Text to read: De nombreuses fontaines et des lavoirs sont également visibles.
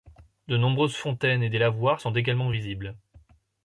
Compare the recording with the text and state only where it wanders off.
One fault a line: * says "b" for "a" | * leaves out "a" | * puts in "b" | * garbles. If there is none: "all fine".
all fine